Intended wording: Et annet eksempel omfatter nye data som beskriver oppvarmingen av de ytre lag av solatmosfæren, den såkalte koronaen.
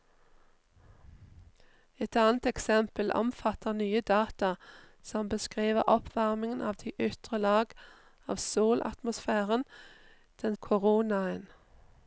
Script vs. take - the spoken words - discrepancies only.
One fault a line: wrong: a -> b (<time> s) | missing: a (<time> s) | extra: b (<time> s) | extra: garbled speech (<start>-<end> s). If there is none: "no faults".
missing: såkalte (10.6 s)